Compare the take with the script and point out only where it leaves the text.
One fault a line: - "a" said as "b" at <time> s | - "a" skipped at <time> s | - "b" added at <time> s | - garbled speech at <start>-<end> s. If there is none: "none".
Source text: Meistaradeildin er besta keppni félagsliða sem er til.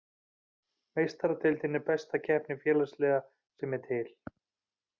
none